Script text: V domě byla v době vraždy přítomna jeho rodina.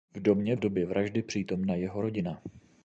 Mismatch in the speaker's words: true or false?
true